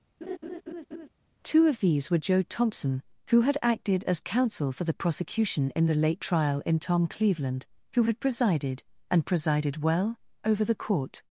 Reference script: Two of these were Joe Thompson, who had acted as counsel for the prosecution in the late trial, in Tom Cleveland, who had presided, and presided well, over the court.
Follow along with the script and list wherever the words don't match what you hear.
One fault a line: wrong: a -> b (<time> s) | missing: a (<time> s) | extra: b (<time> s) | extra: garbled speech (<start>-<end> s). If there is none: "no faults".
no faults